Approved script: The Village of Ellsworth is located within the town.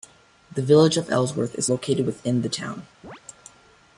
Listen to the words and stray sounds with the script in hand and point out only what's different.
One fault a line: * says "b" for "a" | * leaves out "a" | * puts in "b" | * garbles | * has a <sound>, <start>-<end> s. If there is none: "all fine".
* has a chirp, 3.0-3.2 s